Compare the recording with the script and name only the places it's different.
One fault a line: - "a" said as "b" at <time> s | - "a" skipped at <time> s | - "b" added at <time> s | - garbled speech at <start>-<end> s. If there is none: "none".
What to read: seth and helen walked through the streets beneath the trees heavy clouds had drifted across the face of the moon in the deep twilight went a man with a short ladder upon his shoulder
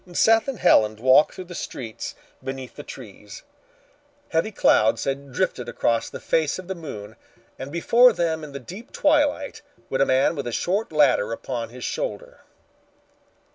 - "and before them" added at 7.6 s